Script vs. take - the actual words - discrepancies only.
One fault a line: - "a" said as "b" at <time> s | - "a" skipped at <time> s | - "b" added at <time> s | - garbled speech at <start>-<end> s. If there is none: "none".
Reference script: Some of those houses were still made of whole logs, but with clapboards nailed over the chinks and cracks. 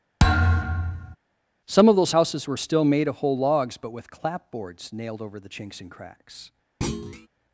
none